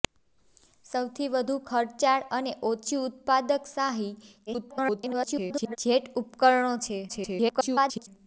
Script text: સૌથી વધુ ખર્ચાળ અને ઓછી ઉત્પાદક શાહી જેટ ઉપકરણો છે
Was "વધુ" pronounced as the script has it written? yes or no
yes